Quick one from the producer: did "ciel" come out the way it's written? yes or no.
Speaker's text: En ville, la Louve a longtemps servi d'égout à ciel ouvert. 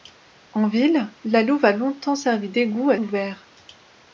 no